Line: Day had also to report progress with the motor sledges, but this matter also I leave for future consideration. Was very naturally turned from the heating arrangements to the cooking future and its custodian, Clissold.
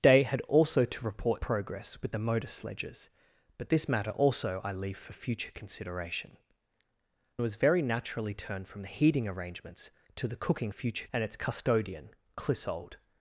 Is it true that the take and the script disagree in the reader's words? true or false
false